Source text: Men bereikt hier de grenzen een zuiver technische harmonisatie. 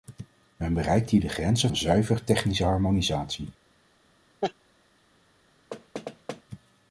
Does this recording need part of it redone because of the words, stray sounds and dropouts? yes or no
yes